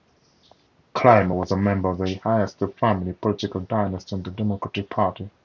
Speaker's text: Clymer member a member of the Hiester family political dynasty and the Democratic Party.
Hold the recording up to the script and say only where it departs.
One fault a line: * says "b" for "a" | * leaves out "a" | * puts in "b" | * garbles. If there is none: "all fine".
* says "was" for "member"